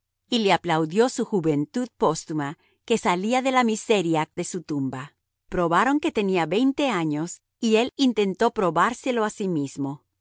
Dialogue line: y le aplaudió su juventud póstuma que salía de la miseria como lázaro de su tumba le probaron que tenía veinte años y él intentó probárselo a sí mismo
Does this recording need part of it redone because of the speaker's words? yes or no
yes